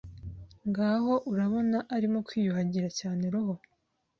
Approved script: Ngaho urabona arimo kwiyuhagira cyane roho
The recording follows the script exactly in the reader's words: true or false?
true